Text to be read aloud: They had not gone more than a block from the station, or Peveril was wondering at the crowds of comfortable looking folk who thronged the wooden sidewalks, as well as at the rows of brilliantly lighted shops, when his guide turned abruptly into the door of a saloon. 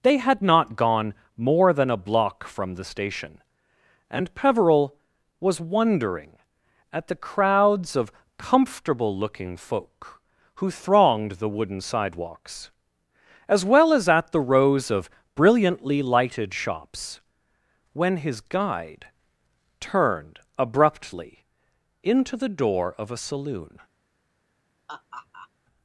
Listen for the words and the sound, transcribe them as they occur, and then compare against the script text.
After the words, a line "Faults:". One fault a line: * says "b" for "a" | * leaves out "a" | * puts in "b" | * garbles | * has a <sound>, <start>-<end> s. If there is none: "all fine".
They had not gone more than a block from the station, and Peveril was wondering at the crowds of comfortable looking folk who thronged the wooden sidewalks, as well as at the rows of brilliantly lighted shops, when his guide turned abruptly into the door of a saloon.
Faults:
* says "and" for "or"
* has a laugh, 24.9-25.5 s